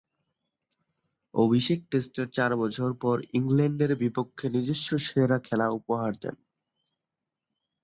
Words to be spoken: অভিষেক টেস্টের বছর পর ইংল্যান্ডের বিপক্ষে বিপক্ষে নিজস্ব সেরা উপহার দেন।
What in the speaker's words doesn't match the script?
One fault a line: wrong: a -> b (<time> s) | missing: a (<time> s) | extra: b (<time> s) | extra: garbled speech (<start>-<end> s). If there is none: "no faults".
extra: চার (2.3 s)
missing: বিপক্ষে (4.5 s)
extra: খেলা (5.4 s)